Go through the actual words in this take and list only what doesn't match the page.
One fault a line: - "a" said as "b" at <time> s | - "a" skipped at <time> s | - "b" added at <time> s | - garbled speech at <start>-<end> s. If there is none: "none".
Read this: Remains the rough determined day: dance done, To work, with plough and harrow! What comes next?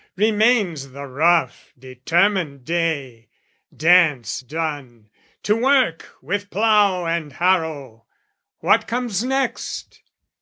none